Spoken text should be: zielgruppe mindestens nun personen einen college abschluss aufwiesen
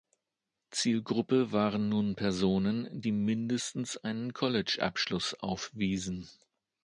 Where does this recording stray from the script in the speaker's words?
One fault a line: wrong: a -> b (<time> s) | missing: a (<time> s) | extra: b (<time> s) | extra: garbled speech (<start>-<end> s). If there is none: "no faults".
wrong: mindestens -> waren (1.5 s)
extra: die mindestens (3.0 s)